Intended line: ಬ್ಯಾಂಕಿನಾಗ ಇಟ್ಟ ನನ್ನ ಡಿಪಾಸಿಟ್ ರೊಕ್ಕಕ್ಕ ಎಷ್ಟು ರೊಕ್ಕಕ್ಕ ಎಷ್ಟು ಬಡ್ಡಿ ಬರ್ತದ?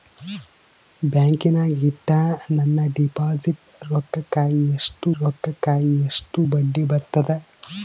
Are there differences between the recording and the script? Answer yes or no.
no